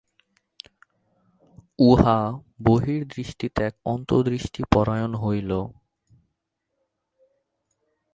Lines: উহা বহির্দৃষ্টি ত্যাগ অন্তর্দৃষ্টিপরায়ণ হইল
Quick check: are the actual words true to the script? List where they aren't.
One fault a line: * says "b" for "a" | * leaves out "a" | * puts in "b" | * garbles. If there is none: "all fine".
all fine